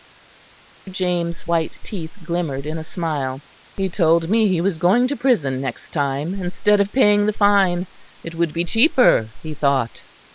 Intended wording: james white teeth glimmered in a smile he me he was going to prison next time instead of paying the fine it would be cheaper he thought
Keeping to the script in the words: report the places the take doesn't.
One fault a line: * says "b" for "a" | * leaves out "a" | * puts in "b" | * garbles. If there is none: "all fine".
* puts in "told"